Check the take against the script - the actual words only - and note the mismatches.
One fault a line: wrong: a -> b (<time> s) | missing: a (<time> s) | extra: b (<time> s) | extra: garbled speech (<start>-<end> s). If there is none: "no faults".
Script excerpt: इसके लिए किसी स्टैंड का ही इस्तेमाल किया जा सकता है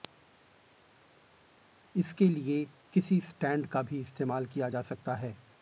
wrong: ही -> भी (3.8 s)